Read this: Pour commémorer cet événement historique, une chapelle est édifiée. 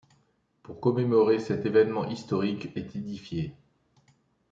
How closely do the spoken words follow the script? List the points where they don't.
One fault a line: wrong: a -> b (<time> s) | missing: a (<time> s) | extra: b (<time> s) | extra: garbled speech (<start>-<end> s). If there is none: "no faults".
missing: une chapelle (2.7 s)